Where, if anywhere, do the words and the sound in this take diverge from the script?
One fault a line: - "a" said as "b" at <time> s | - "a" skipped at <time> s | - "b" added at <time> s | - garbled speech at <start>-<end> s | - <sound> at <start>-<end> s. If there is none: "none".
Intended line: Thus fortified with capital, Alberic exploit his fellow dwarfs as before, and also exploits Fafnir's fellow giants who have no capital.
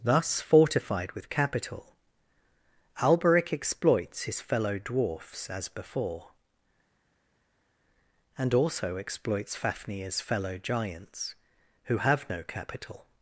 - "exploit" said as "exploits" at 3.5 s